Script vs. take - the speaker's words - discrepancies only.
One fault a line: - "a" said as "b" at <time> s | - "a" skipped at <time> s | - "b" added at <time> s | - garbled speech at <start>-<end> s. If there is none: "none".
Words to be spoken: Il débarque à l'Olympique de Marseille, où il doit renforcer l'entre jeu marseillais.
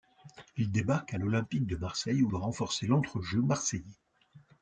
- "il" skipped at 2.3 s